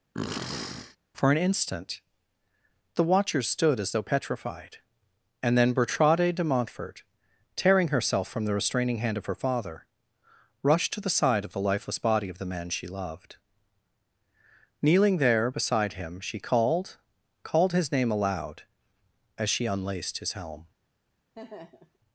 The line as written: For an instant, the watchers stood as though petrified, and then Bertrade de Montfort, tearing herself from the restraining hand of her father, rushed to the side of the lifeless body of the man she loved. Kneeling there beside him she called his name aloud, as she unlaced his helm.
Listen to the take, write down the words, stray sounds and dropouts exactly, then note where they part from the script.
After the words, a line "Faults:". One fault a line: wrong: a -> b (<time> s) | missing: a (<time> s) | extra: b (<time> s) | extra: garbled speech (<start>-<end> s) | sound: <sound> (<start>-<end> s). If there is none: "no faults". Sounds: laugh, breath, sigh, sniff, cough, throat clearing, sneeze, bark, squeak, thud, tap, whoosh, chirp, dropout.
For an instant, the watchers stood as though petrified, and then Bertrade de Montfort, tearing herself from the restraining hand of her father, rushed to the side of the lifeless body of the man she loved. Kneeling there beside him she called called his name aloud, as she unlaced his helm.
Faults:
sound: sniff (0.1-1.0 s)
extra: called (17.4 s)
sound: laugh (21.3-22.0 s)